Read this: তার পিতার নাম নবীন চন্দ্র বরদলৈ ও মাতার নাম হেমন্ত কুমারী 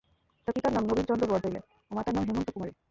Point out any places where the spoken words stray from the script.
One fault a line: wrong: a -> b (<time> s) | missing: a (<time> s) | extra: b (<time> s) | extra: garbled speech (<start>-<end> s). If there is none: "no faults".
no faults